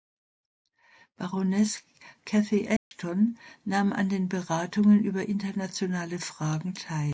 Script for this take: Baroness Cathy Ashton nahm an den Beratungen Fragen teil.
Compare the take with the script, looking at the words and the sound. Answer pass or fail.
fail